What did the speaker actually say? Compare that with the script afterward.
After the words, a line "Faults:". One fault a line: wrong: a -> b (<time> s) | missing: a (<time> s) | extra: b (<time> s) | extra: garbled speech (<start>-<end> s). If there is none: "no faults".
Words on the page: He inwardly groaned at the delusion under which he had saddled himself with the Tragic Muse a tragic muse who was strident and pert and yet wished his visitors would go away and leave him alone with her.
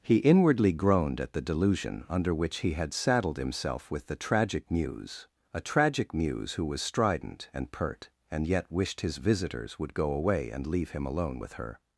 He inwardly groaned at the delusion under which he had saddled himself with the Tragic Muse a tragic muse who was strident and pert and yet wished his visitors would go away and leave him alone with her.
Faults:
no faults